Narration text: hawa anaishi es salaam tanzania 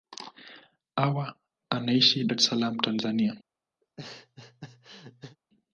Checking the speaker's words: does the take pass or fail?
pass